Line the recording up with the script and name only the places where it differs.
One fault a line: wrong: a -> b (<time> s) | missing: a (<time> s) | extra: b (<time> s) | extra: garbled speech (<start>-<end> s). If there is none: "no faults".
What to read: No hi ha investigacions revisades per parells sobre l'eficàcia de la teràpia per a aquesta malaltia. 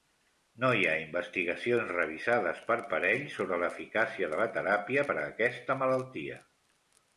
no faults